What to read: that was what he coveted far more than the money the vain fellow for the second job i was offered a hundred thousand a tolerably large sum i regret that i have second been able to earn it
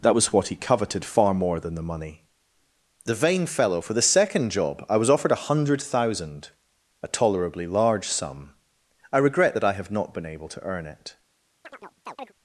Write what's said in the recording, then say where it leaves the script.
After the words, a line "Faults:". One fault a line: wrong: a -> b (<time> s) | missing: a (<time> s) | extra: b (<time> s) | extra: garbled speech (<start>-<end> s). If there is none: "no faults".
that was what he coveted far more than the money the vain fellow for the second job i was offered a hundred thousand a tolerably large sum i regret that i have not been able to earn it
Faults:
wrong: second -> not (9.9 s)